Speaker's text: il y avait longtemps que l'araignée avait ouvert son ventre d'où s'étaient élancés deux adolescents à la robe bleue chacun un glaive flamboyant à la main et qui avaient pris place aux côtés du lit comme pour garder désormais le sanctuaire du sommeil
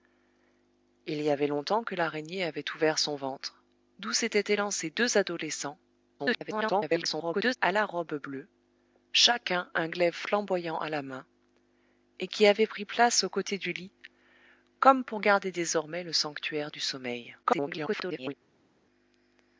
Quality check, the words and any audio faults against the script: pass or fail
fail